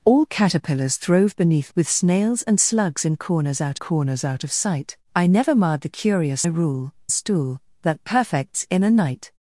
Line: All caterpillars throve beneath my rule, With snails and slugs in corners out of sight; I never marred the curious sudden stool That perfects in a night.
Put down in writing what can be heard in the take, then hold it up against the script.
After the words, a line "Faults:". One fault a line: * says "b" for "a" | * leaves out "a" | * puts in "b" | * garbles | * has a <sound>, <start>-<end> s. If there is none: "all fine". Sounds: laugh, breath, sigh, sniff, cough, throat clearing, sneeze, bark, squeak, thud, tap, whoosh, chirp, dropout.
All caterpillars throve beneath With snails and slugs in corners out corners out of sight; I never marred the curious rule stool That perfects in a night.
Faults:
* leaves out "my rule"
* puts in "corners out"
* says "rule" for "sudden"